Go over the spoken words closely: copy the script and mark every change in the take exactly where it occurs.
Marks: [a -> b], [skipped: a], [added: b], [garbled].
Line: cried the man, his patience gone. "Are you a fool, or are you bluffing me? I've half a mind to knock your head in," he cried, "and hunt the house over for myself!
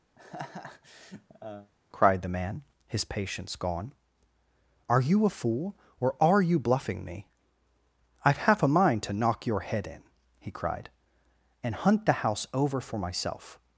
cried the man, his patience gone. "Are you a fool, or are you bluffing me? I've half a mind to knock your head in," he cried, "and hunt the house over for myself!